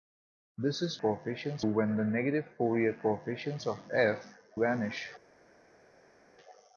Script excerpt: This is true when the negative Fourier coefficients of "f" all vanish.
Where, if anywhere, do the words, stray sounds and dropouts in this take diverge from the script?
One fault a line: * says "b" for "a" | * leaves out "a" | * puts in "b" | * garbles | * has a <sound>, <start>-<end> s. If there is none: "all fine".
* says "coefficients" for "true"
* leaves out "all"